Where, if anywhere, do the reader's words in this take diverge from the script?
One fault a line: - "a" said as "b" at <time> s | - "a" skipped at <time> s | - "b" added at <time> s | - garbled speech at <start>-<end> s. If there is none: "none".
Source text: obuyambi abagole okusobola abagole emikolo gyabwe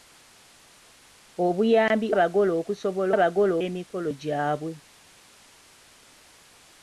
none